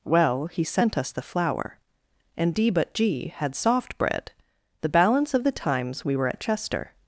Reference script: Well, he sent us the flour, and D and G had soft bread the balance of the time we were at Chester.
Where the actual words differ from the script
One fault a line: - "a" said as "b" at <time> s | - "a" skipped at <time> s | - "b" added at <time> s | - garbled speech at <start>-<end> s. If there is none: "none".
- "and" said as "but" at 2.7 s
- "time" said as "times" at 5.5 s